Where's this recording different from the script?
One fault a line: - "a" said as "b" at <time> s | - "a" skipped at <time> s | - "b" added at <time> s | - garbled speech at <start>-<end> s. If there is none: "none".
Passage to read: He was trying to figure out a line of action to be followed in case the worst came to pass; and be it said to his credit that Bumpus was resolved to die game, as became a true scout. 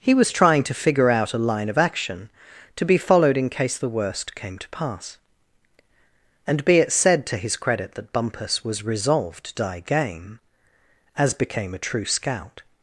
- "to" skipped at 9.6 s